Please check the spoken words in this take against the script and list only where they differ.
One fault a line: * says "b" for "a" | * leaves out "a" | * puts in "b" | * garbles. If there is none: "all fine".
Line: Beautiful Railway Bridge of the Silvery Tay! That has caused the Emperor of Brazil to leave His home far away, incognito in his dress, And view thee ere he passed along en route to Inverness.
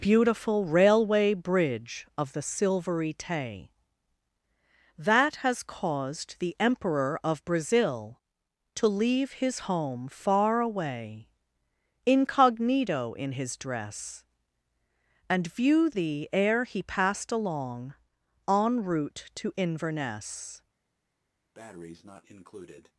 all fine